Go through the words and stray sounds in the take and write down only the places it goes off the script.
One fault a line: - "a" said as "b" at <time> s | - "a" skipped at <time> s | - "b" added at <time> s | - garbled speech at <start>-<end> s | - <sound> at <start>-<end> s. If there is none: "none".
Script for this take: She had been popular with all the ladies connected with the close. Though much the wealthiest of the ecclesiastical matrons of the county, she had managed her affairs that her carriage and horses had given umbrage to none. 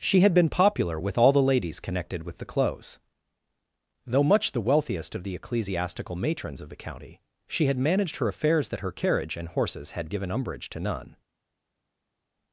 none